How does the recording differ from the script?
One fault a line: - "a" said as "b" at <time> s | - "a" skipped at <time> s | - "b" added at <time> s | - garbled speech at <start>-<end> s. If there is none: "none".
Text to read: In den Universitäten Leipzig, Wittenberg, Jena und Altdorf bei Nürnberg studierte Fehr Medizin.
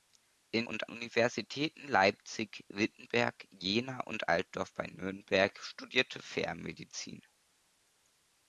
- "den" said as "und" at 0.6 s